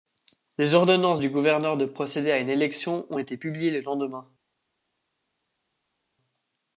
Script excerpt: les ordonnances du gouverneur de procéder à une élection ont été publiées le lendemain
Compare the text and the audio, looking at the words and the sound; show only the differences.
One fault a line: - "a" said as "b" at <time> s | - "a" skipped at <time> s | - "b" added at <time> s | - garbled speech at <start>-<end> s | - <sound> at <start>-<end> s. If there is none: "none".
none